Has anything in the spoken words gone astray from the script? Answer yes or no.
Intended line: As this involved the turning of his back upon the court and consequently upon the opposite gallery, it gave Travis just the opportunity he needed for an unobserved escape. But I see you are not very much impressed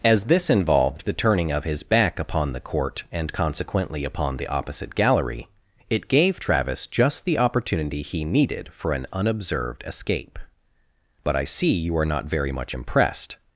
no